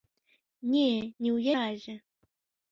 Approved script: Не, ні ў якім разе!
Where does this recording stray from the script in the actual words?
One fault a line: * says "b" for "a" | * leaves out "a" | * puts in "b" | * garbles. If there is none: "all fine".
* leaves out "якім"